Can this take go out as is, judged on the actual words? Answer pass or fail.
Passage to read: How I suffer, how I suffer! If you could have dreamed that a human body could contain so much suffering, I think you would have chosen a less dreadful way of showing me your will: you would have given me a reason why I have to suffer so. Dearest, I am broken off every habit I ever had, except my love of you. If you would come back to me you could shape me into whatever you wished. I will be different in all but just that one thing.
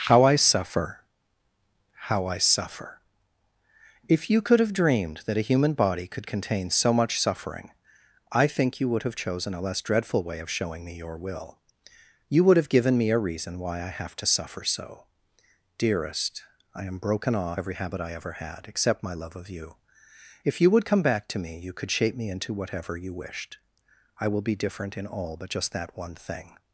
pass